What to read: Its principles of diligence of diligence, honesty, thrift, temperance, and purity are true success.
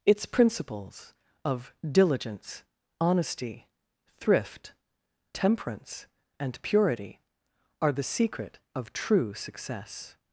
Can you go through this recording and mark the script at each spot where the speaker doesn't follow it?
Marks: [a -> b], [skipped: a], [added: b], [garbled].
Its principles of diligence [skipped: of diligence,] honesty, thrift, temperance, and purity are [added: the secret of] true success.